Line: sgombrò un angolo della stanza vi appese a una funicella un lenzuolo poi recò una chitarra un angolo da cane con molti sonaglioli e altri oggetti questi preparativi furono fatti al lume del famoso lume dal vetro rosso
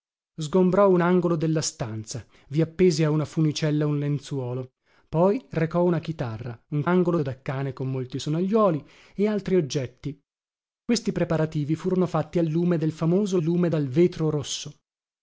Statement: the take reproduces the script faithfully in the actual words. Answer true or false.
true